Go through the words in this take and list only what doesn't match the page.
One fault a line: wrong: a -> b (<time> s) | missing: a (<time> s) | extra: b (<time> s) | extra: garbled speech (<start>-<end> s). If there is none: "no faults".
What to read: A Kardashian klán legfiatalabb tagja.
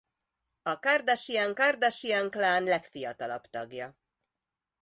extra: Kardashian (1.5 s)